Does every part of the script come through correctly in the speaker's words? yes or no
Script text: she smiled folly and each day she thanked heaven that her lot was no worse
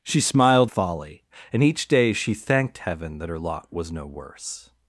yes